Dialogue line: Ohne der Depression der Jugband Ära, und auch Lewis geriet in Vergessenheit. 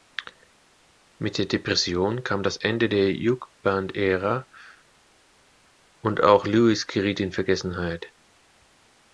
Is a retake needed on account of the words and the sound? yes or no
yes